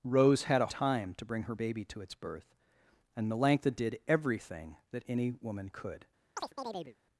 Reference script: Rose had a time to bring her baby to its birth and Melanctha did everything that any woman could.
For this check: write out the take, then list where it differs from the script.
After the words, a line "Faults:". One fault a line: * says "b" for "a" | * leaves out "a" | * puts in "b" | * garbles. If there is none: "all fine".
Rose had a time to bring her baby to its birth and Melanctha did everything that any woman could.
Faults:
all fine